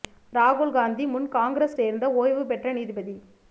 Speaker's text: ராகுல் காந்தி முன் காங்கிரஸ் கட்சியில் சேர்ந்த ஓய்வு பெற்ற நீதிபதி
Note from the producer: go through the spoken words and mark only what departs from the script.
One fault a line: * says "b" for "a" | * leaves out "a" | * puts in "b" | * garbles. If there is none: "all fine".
* leaves out "கட்சியில்"